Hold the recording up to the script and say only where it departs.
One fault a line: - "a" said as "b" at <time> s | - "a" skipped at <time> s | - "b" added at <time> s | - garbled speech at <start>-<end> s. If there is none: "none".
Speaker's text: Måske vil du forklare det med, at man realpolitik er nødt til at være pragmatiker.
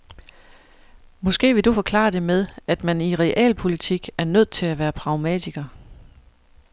- "i" added at 3.0 s